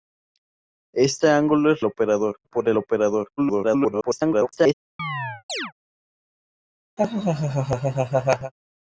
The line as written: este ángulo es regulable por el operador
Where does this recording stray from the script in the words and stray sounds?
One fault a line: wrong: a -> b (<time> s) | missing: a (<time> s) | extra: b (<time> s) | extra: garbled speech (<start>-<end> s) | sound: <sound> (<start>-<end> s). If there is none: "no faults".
wrong: regulable -> operador (1.8 s)
extra: garbled speech (3.4-4.7 s)
sound: chirp (5.0-5.7 s)
sound: laugh (7.0-8.5 s)